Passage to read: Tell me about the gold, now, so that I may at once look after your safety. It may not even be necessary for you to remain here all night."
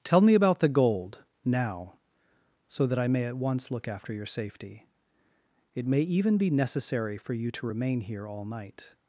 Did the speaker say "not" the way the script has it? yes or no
no